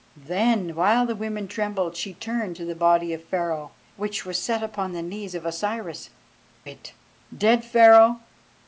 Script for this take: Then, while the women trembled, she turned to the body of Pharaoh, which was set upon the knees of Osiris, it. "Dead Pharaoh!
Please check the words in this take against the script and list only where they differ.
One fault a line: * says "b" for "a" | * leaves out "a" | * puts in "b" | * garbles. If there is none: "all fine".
all fine